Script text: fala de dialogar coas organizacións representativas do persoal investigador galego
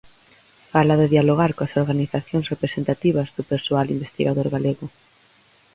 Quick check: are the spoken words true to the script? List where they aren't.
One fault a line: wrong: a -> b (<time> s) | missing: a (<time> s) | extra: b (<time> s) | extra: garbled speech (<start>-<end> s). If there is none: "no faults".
no faults